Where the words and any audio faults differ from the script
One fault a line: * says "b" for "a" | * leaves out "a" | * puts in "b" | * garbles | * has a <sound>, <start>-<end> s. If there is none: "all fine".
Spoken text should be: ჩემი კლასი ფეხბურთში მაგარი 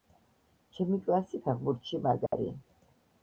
* has a dropout, 2.3-2.3 s